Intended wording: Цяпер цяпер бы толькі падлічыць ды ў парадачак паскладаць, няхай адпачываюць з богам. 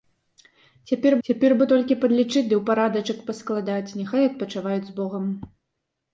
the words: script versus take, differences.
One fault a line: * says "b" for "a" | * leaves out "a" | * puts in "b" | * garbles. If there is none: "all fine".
all fine